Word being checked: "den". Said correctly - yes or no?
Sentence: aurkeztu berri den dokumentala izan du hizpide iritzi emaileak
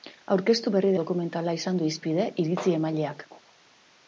no